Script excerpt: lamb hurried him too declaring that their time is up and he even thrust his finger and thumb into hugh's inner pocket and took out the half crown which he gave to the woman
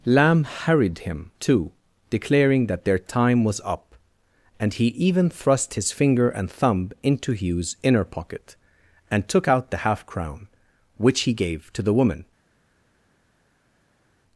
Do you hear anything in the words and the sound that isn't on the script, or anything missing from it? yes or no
yes